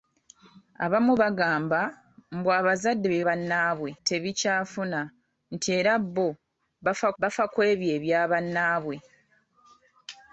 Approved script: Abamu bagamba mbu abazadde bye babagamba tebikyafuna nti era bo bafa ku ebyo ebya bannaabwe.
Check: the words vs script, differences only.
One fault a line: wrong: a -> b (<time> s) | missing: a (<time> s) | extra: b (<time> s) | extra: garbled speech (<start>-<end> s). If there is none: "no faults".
wrong: babagamba -> bannaabwe (3.2 s)
extra: bafa (7.2 s)